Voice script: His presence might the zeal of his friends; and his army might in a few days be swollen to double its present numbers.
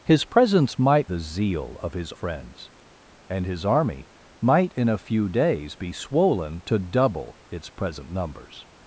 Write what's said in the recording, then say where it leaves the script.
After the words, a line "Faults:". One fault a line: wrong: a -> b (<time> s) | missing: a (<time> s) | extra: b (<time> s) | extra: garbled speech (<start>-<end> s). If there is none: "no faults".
His presence might the zeal of his friends; and his army might in a few days be swollen to double its present numbers.
Faults:
no faults